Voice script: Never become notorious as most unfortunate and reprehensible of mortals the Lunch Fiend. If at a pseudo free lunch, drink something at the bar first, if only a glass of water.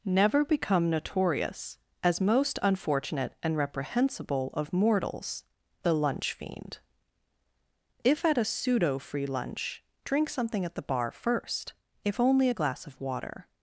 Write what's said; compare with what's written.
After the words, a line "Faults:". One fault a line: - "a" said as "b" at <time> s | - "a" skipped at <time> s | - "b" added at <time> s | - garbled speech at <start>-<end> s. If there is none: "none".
Never become notorious as most unfortunate and reprehensible of mortals the Lunch Fiend. If at a pseudo free lunch, drink something at the bar first, if only a glass of water.
Faults:
none